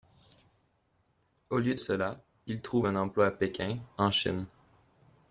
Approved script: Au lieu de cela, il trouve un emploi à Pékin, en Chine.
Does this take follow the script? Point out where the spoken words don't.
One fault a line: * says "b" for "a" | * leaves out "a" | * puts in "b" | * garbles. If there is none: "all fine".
* leaves out "de"